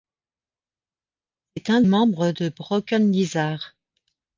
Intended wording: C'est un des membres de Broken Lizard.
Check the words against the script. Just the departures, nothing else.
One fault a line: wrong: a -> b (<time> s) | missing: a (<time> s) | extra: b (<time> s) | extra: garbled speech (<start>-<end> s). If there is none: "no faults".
missing: des (1.8 s)